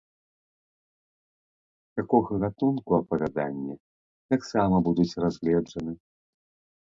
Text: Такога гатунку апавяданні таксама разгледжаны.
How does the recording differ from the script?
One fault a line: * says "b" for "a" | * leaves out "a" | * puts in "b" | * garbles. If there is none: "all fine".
* puts in "будуць"